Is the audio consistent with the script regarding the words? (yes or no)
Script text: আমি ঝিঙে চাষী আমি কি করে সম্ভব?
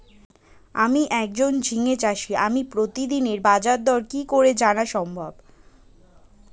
no